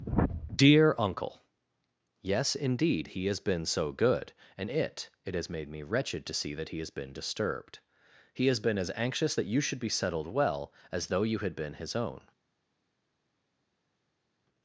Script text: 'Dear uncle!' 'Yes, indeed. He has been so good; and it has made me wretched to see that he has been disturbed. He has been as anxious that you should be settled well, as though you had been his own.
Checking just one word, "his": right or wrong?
right